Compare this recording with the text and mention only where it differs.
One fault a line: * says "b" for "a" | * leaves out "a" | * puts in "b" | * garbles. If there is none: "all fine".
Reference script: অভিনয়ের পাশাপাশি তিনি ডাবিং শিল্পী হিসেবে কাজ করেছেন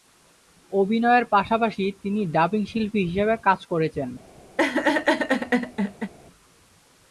all fine